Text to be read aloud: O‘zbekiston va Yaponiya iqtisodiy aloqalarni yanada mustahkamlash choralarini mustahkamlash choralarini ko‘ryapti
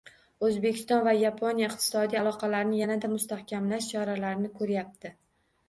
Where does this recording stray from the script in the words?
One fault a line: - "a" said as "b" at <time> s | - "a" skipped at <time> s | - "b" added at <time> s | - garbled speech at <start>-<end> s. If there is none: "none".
- "mustahkamlash choralarini" skipped at 4.6 s